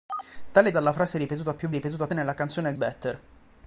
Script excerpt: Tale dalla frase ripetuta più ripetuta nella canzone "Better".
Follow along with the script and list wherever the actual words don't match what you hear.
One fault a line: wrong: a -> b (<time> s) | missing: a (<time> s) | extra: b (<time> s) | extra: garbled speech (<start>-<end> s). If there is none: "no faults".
no faults